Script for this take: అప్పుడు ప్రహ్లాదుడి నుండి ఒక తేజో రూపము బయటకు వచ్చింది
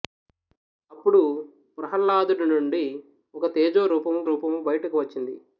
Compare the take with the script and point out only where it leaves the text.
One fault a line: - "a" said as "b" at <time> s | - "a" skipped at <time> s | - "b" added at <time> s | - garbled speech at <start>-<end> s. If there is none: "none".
- "రూపము" added at 4.2 s